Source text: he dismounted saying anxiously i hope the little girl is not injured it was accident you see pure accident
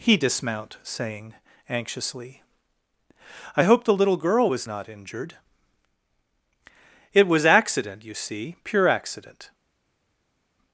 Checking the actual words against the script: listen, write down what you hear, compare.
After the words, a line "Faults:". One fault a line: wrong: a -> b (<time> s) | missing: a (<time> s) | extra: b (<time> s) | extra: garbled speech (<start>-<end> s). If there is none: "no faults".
he dismount saying anxiously i hope the little girl was not injured it was accident you see pure accident
Faults:
wrong: dismounted -> dismount (0.2 s)
wrong: is -> was (4.5 s)